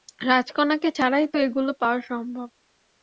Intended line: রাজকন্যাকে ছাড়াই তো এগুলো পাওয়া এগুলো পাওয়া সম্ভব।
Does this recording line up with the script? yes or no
no